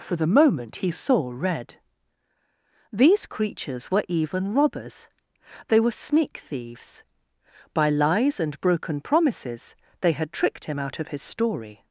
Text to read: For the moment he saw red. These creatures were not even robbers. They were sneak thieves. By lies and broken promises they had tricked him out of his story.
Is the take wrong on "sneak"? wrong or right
right